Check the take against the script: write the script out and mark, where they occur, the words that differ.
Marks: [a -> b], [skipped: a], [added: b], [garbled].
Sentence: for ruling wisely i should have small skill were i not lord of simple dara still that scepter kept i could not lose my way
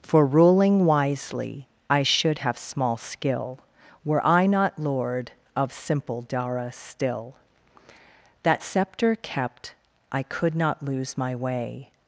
for ruling wisely i should have small skill were i not lord of simple dara still that scepter kept i could not lose my way